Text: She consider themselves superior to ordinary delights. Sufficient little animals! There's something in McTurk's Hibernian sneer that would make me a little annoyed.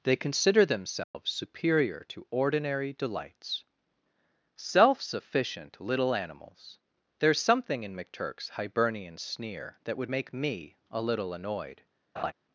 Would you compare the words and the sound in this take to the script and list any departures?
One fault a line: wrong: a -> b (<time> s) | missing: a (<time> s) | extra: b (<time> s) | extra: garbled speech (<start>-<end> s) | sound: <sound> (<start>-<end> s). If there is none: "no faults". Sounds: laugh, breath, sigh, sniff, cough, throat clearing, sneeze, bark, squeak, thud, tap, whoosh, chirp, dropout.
wrong: She -> They (0.0 s)
sound: dropout (1.0-1.1 s)
extra: Self (4.5 s)
sound: laugh (12.2-12.3 s)